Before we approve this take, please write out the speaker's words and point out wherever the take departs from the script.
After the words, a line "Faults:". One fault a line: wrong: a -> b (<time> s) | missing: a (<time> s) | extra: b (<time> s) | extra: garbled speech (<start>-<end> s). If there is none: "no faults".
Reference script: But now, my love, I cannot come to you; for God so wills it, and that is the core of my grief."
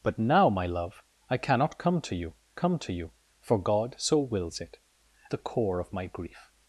But now, my love, I cannot come to you come to you; for God so wills it, the core of my grief."
Faults:
extra: come to you (2.5 s)
missing: and that is (4.8 s)